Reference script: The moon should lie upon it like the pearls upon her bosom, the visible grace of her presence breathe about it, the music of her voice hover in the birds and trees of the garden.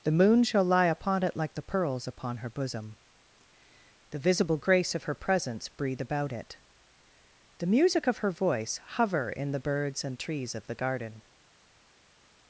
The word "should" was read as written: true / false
false